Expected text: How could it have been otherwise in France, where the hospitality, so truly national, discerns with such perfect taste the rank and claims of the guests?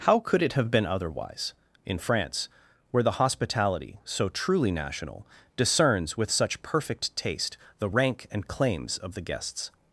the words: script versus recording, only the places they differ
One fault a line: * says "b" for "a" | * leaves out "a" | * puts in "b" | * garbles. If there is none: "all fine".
all fine